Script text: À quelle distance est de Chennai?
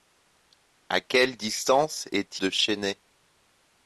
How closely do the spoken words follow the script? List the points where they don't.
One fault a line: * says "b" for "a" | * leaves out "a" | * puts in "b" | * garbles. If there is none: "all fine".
all fine